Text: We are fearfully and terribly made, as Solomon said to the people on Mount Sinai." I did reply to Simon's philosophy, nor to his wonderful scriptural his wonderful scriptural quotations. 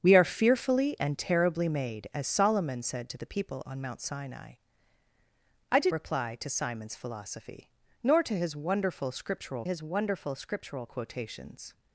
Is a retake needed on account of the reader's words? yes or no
no